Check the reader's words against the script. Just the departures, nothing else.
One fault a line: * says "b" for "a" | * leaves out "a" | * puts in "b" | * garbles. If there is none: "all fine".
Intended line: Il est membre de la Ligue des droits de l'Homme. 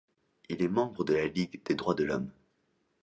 all fine